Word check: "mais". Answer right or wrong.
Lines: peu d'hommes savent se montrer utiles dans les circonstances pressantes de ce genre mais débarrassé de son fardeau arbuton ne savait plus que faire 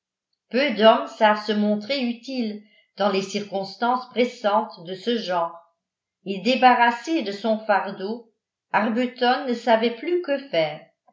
wrong